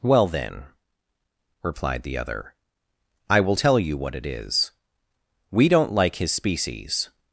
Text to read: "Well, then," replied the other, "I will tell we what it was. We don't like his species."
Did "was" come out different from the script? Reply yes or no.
yes